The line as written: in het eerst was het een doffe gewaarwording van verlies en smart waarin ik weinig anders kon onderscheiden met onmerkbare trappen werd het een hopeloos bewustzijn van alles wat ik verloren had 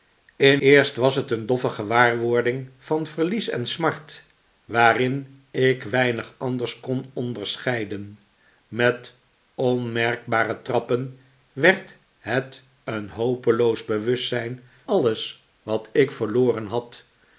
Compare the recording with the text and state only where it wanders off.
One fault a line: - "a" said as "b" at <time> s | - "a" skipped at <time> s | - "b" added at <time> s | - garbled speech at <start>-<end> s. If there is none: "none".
- "het" skipped at 0.6 s
- "van" skipped at 14.6 s